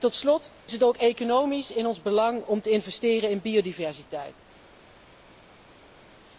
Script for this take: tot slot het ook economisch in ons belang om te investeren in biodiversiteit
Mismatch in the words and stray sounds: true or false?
false